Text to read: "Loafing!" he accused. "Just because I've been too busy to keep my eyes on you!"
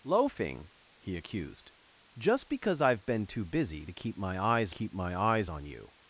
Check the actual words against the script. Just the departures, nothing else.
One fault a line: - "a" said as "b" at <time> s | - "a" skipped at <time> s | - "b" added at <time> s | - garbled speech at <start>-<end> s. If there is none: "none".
- "keep my eyes" added at 4.7 s